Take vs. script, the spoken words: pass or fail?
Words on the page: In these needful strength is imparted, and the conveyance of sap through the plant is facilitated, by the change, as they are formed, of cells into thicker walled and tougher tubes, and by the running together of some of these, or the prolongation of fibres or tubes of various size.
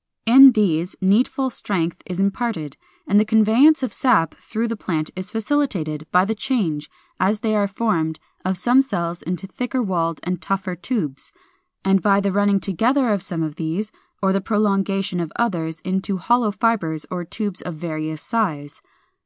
fail